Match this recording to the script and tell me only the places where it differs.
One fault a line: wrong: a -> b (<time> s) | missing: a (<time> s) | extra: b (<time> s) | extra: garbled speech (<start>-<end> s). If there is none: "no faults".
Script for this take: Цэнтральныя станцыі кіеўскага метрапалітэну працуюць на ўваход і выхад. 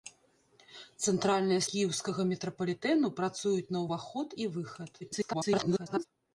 missing: станцыі (1.6 s)
extra: garbled speech (5.0-6.1 s)